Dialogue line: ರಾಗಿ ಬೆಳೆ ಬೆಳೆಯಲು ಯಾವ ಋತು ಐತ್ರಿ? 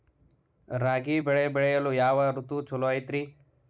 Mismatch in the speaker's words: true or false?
true